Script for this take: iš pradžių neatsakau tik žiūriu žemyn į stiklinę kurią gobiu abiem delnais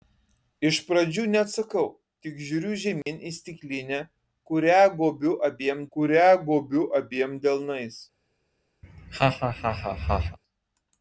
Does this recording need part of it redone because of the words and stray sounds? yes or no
yes